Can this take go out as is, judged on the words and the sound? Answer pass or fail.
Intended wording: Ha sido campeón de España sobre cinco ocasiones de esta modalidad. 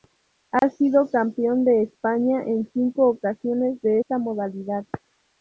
fail